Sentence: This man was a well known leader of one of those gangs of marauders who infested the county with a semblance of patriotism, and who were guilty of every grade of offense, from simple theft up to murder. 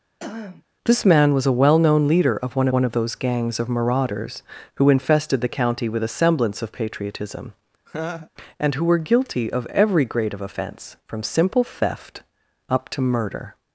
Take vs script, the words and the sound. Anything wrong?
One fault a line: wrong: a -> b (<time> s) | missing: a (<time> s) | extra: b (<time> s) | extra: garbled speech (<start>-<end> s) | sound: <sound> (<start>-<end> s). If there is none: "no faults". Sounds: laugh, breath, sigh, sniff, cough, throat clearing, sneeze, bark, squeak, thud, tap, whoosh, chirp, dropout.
sound: throat clearing (0.2-0.6 s)
extra: one (2.7 s)
sound: laugh (7.9-8.3 s)